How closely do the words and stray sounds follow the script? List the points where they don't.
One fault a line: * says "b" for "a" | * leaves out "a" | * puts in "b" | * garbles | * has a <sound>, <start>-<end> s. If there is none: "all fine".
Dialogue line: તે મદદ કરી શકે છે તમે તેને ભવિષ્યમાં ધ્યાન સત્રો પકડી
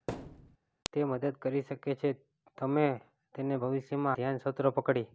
* has a thud, 0.1-0.6 s